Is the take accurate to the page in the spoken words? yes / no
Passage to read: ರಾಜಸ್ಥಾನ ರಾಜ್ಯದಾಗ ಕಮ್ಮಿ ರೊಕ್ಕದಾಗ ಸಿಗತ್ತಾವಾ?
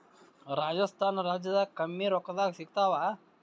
yes